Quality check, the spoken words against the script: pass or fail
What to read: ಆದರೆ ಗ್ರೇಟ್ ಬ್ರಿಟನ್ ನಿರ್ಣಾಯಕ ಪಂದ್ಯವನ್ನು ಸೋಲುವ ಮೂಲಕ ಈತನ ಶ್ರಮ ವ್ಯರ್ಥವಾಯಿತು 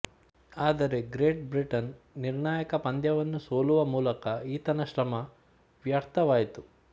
pass